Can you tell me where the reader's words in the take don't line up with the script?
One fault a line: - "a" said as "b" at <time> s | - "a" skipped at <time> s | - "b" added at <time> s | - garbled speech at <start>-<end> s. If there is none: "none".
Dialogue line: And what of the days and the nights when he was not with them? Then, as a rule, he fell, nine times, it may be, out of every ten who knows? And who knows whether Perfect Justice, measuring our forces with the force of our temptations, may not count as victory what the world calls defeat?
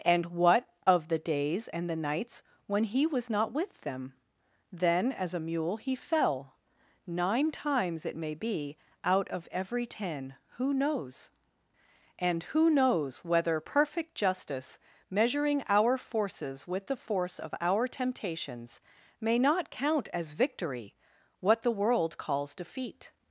- "rule" said as "mule" at 5.4 s